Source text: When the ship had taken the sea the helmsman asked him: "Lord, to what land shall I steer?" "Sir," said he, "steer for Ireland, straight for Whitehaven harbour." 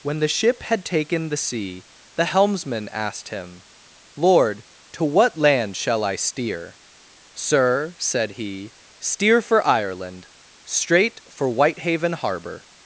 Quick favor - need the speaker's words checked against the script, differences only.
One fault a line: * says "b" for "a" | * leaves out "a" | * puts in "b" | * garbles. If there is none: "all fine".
all fine